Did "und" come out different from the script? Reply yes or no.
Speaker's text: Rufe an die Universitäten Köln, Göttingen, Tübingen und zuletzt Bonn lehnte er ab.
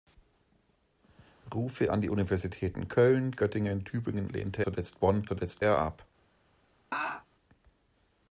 yes